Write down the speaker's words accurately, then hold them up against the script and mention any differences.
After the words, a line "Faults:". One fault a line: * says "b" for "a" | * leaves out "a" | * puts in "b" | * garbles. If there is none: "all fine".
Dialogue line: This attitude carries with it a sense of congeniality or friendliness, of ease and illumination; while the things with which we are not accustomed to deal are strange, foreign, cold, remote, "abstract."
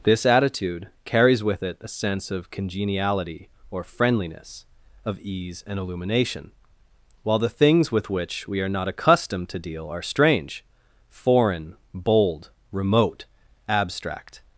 This attitude carries with it a sense of congeniality or friendliness, of ease and illumination; while the things with which we are not accustomed to deal are strange, foreign, bold, remote, "abstract."
Faults:
* says "bold" for "cold"